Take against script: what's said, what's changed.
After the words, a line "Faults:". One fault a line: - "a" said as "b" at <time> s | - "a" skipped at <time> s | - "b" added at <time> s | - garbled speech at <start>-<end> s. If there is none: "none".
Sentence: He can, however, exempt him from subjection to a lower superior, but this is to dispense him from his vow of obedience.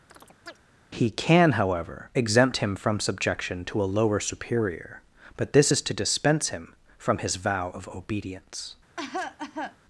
He can, however, exempt him from subjection to a lower superior, but this is to dispense him from his vow of obedience.
Faults:
none